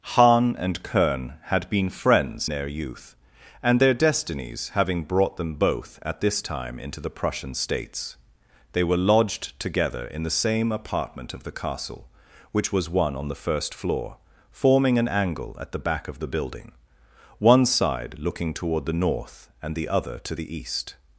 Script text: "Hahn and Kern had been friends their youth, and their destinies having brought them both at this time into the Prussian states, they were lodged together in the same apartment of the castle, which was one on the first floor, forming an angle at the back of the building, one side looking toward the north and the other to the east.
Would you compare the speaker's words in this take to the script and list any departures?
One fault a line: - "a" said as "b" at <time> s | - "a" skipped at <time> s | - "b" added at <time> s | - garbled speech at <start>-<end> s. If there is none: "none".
none